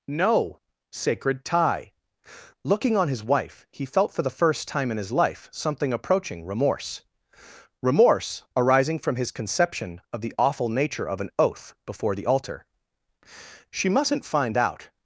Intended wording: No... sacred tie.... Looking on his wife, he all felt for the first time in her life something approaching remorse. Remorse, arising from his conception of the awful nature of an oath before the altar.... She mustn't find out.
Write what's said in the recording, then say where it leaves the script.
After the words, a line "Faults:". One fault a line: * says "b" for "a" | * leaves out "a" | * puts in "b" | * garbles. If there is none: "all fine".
No... sacred tie.... Looking on his wife, he felt for the first time in his life something approaching remorse. Remorse, arising from his conception of the awful nature of an oath before the altar.... She mustn't find out.
Faults:
* leaves out "all"
* says "his" for "her"